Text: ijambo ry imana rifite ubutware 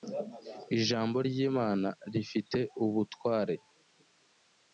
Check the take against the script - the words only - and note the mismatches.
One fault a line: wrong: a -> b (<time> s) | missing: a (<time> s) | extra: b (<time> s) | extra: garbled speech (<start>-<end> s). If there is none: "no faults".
no faults